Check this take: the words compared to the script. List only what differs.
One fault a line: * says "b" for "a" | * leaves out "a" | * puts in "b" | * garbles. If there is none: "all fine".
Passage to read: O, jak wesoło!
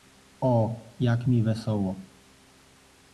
* puts in "mi"